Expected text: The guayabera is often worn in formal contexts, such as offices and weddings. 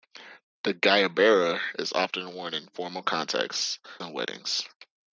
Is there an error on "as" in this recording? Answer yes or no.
yes